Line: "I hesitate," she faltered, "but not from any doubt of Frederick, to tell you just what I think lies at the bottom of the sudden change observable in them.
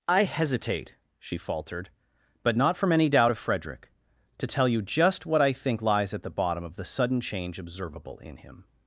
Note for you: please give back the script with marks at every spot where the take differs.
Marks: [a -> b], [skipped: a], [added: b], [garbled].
"I hesitate," she faltered, "but not from any doubt of Frederick, to tell you just what I think lies at the bottom of the sudden change observable in [them. -> him]